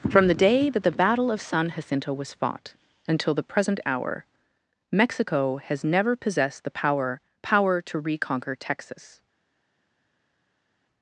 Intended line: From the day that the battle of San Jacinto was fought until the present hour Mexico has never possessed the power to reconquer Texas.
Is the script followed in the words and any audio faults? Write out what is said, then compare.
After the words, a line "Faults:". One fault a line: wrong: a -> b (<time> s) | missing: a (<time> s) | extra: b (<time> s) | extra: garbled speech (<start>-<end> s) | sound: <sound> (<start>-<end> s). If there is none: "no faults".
From the day that the battle of San Jacinto was fought until the present hour Mexico has never possessed the power power to reconquer Texas.
Faults:
extra: power (7.4 s)